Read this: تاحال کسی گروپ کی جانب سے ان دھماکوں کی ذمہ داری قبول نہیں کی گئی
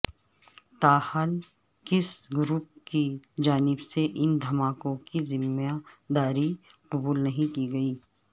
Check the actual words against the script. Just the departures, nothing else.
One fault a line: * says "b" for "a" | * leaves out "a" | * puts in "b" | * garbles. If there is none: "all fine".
all fine